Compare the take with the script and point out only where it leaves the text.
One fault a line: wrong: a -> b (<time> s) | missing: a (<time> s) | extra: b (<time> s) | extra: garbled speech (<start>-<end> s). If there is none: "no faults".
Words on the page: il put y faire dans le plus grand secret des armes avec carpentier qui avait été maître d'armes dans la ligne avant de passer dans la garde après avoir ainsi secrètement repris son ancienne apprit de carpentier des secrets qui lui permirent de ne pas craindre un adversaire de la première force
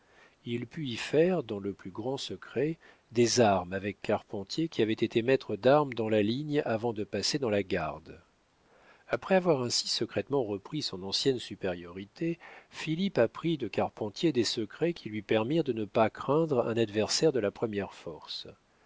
extra: supériorité philippe (11.4 s)